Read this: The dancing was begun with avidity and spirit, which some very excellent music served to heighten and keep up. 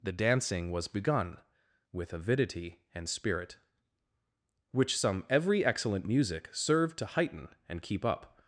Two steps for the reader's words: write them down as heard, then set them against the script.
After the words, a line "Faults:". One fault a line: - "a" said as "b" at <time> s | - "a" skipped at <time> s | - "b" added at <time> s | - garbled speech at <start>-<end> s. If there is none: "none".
The dancing was begun with avidity and spirit, which some every excellent music served to heighten and keep up.
Faults:
- "very" said as "every" at 5.3 s